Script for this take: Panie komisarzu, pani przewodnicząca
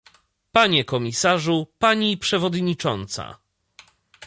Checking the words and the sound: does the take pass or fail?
pass